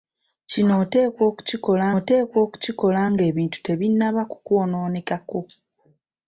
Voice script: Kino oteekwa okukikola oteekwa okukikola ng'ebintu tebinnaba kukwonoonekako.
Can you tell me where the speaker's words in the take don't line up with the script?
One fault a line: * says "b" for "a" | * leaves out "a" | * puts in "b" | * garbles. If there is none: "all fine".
all fine